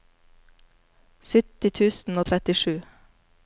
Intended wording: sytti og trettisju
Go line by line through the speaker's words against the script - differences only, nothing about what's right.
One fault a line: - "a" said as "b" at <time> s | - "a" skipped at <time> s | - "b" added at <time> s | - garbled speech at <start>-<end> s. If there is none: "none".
- "tusen" added at 1.8 s